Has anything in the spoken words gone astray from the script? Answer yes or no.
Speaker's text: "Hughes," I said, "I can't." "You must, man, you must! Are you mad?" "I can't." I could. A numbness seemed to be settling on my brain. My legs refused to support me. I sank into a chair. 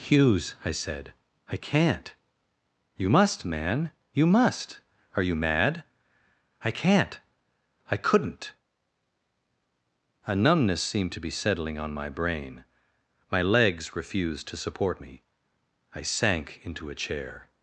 yes